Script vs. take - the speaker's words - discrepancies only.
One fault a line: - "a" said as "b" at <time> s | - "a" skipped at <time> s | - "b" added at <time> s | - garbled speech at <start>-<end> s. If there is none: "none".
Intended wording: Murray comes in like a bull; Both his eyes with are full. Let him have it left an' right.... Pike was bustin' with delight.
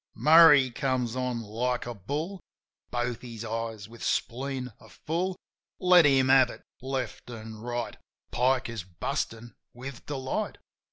- "in" said as "on" at 1.2 s
- "spleen" added at 4.0 s
- "was" said as "is" at 8.7 s